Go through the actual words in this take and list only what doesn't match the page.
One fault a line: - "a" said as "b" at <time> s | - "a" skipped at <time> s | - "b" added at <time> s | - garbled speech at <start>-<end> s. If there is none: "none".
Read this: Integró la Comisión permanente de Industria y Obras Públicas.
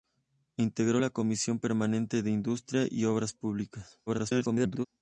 - garbled speech at 4.1-4.9 s